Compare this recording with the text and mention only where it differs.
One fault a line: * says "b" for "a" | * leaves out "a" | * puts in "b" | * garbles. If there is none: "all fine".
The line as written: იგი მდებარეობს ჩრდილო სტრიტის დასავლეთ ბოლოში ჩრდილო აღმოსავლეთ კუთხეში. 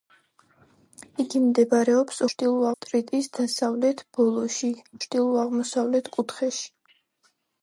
all fine